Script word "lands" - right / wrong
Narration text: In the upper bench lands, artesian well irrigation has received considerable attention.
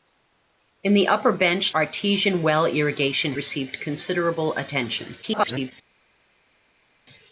wrong